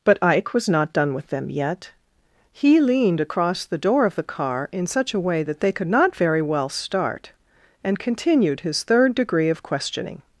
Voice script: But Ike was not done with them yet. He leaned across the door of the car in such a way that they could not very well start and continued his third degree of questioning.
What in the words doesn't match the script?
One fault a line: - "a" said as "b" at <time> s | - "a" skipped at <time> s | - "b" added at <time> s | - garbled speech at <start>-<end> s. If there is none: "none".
none